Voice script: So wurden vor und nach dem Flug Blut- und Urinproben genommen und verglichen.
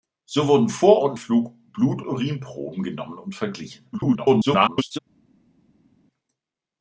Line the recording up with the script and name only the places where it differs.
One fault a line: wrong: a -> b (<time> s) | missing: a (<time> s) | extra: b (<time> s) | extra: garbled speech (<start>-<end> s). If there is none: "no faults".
missing: nach dem (1.2 s)
missing: und (2.0 s)
extra: garbled speech (3.9-5.0 s)